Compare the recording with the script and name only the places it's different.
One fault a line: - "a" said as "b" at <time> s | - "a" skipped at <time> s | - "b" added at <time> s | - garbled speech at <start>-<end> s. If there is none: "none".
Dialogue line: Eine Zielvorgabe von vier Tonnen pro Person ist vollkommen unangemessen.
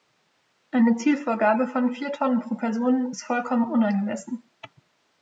none